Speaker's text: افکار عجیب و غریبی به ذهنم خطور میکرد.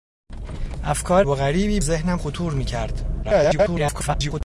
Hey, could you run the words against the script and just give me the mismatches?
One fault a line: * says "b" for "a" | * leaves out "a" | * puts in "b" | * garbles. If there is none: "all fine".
* leaves out "عجیب"
* leaves out "به"
* garbles